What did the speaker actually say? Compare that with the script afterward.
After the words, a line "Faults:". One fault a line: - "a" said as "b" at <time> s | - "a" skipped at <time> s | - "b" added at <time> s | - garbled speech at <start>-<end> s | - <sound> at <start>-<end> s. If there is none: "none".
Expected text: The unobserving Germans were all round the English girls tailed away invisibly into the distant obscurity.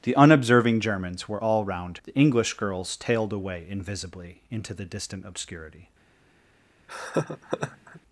The unobserving Germans were all round the English girls tailed away invisibly into the distant obscurity.
Faults:
- laugh at 6.9-8.0 s